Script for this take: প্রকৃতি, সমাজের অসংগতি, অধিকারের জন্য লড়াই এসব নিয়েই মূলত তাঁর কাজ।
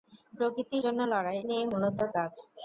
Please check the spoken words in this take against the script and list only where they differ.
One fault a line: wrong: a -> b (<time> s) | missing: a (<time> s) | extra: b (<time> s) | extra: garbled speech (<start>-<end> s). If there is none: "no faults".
missing: সমাজের অসংগতি অধিকারের (0.8 s)
missing: এসব (1.4 s)
missing: তাঁর (2.0 s)